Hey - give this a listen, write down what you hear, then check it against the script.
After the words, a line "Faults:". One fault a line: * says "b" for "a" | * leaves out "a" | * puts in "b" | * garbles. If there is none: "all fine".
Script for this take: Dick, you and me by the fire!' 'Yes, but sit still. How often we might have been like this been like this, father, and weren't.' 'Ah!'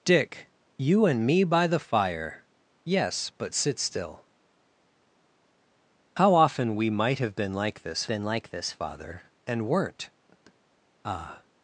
Dick, you and me by the fire!' 'Yes, but sit still. How often we might have been like this been like this, father, and weren't.' 'Ah!'
Faults:
all fine